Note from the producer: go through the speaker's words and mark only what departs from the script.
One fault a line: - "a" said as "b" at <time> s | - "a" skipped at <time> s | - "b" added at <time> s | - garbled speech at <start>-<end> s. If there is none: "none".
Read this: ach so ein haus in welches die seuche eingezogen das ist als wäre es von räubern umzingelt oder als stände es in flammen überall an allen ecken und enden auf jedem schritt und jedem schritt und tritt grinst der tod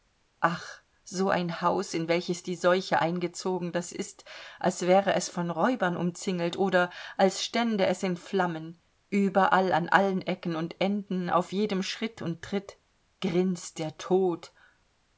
- "jedem schritt und" skipped at 12.4 s